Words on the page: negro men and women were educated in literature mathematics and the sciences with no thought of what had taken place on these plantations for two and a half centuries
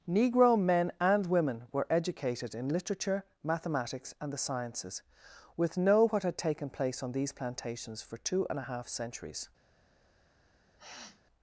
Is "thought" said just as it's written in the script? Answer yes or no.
no